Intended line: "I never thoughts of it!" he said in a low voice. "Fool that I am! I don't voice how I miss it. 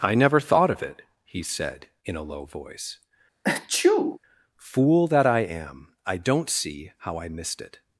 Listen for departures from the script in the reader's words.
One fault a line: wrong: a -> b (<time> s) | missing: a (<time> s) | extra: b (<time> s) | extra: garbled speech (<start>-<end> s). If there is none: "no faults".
wrong: thoughts -> thought (0.4 s)
wrong: voice -> see (6.5 s)
wrong: miss -> missed (7.3 s)